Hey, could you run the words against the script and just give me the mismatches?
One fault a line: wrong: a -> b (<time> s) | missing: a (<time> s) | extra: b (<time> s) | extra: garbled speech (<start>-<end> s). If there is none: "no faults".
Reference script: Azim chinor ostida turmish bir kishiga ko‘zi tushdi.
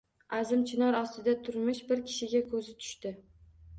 no faults